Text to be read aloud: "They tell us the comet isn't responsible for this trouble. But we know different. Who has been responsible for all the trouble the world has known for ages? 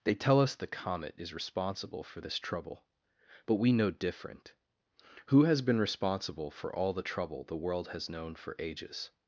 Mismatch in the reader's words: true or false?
true